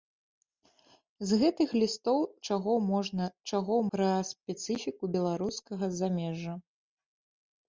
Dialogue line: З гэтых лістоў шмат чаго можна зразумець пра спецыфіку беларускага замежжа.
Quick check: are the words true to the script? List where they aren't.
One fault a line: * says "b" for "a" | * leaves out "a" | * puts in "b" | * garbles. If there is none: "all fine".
* leaves out "шмат"
* says "чаго" for "зразумець"